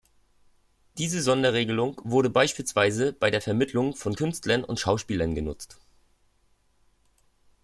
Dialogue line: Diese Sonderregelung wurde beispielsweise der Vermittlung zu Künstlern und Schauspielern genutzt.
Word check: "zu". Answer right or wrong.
wrong